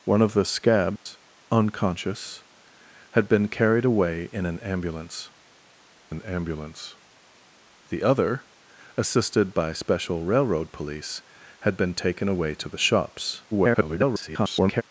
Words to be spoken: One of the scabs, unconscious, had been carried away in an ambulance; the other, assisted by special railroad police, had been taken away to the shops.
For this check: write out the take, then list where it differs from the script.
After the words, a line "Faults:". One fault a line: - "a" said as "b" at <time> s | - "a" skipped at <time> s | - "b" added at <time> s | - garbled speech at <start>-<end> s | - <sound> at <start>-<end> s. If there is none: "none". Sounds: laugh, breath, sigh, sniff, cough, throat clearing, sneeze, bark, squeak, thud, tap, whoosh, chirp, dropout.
One of the scabs, unconscious, had been carried away in an ambulance an ambulance; the other, assisted by special railroad police, had been taken away to the shops. [garbled]
Faults:
- dropout at 1.0-1.1 s
- "an ambulance" added at 6.1 s
- garbled speech at 13.5-14.8 s